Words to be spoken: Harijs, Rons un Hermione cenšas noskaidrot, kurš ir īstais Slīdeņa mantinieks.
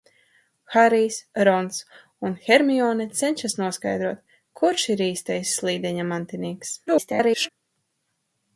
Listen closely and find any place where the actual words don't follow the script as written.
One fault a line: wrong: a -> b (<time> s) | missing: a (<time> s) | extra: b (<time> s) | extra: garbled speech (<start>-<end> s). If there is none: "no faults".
extra: garbled speech (6.9-7.5 s)